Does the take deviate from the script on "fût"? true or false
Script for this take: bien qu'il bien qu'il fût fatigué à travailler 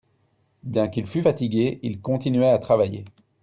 true